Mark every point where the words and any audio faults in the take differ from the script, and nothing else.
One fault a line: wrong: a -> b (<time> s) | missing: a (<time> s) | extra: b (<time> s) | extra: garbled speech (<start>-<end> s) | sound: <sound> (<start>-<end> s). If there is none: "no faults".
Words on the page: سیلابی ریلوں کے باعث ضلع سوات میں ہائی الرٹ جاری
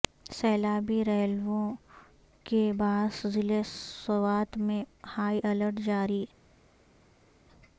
no faults